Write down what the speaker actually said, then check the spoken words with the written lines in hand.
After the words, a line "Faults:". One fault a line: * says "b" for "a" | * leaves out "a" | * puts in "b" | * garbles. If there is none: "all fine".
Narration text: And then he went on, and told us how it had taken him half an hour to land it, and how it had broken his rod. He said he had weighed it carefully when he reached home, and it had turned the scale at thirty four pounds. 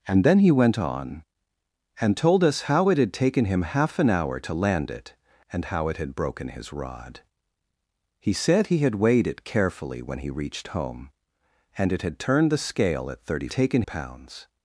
And then he went on, and told us how it had taken him half an hour to land it, and how it had broken his rod. He said he had weighed it carefully when he reached home, and it had turned the scale at thirty taken pounds.
Faults:
* says "taken" for "four"